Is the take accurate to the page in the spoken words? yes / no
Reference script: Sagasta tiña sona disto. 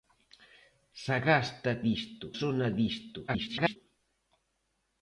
no